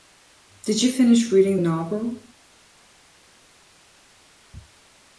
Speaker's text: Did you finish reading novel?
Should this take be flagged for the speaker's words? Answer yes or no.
no